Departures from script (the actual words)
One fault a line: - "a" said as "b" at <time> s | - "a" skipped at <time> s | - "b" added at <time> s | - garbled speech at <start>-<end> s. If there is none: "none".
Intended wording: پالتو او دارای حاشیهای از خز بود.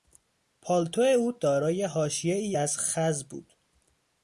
none